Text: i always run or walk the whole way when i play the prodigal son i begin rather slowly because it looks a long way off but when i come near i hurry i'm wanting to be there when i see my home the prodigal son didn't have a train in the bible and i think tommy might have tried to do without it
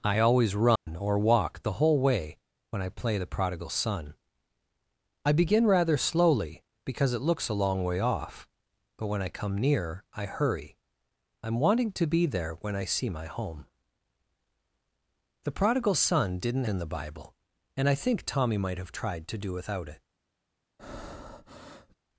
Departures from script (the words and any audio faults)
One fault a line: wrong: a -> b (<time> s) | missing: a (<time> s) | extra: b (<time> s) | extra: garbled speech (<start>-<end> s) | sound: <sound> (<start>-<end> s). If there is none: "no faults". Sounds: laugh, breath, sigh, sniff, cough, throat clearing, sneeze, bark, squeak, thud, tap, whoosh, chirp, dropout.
sound: dropout (0.8-0.9 s)
missing: have a train (16.6 s)
sound: breath (20.8-22.0 s)